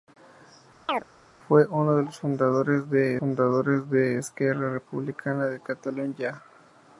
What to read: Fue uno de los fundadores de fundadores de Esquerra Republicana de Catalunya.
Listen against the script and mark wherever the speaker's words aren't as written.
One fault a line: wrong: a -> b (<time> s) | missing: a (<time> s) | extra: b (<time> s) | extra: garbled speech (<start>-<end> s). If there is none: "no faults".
no faults